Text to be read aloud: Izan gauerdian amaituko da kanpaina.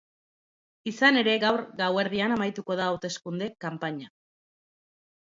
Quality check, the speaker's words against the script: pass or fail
fail